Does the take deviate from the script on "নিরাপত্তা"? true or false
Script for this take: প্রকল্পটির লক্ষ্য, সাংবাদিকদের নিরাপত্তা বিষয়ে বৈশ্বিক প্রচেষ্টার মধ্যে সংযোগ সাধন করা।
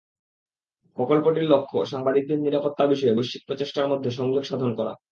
false